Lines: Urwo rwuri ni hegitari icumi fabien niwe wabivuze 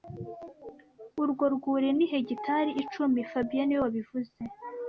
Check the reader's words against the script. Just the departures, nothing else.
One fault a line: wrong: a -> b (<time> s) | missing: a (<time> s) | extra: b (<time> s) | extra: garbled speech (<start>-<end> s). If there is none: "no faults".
no faults